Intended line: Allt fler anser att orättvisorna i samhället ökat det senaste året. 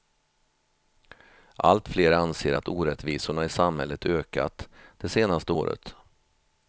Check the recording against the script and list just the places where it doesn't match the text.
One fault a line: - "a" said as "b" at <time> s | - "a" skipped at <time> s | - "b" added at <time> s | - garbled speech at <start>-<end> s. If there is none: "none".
none